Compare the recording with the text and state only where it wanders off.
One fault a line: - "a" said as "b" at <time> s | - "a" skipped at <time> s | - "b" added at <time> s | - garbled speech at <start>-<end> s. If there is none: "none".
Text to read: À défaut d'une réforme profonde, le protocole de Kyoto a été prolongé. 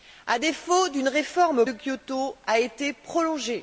- "profonde le protocole" skipped at 1.6 s